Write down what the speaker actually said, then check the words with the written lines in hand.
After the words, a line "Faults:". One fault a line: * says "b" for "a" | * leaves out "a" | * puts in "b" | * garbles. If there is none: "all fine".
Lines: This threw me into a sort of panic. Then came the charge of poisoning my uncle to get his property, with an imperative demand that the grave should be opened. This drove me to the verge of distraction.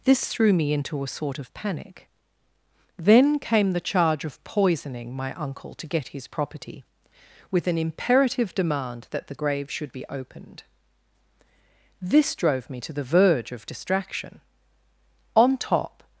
This threw me into a sort of panic. Then came the charge of poisoning my uncle to get his property, with an imperative demand that the grave should be opened. This drove me to the verge of distraction. On top
Faults:
* puts in "On top"